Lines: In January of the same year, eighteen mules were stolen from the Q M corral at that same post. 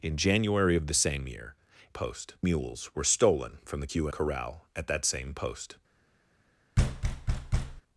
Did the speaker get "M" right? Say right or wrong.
wrong